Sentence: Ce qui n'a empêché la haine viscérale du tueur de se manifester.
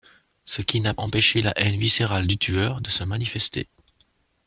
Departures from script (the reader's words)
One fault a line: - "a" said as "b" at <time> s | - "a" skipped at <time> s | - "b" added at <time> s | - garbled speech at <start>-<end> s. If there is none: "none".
none